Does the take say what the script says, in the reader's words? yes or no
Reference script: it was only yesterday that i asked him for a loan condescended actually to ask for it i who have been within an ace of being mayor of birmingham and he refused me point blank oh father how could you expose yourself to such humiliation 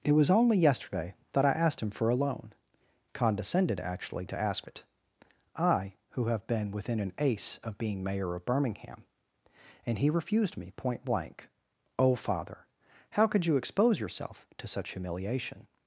no